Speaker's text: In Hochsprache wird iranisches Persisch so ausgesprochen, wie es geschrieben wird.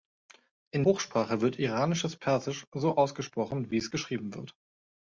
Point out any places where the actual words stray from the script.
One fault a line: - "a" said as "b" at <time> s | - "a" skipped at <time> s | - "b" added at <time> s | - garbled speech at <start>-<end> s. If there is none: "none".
none